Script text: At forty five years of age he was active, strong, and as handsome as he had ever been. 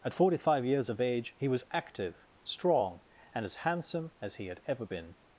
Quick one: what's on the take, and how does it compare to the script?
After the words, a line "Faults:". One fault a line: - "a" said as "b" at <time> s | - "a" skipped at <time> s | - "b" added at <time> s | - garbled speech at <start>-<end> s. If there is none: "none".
At forty five years of age he was active, strong, and as handsome as he had ever been.
Faults:
none